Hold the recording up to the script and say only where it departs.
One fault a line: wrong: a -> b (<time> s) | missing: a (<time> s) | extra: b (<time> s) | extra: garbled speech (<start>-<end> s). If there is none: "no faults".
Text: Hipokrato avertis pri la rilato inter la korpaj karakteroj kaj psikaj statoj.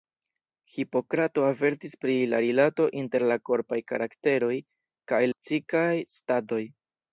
no faults